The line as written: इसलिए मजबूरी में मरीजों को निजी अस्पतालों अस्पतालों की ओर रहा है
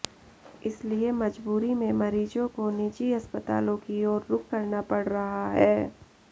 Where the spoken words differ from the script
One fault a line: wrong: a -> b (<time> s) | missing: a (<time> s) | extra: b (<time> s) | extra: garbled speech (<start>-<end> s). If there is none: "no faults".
missing: अस्पतालों (3.8 s)
extra: रुख करना पड़ (4.3 s)